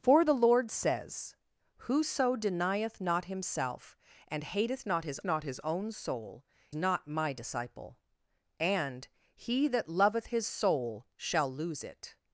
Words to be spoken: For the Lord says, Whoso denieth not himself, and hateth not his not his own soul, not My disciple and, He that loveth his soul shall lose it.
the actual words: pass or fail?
pass